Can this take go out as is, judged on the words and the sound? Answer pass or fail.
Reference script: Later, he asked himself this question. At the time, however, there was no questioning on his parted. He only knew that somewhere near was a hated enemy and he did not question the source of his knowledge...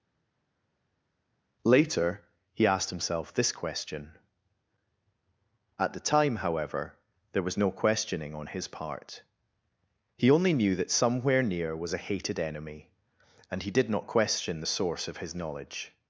fail